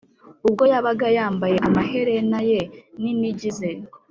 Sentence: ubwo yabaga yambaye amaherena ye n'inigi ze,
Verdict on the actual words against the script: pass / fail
pass